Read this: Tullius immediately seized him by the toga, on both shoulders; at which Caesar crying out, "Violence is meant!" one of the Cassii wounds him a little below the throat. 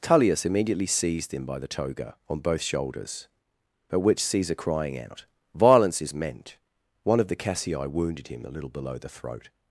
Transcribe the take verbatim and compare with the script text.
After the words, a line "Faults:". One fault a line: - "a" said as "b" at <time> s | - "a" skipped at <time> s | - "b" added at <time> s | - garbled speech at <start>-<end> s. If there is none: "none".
Tullius immediately seized him by the toga, on both shoulders; at which Caesar crying out, "Violence is meant!" one of the Cassii wounded him a little below the throat.
Faults:
- "wounds" said as "wounded" at 7.9 s